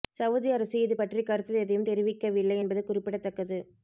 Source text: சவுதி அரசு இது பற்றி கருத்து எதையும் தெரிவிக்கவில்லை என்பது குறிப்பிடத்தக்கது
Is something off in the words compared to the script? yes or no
no